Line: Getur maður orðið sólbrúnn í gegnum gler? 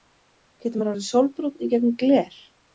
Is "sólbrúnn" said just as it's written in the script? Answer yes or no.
yes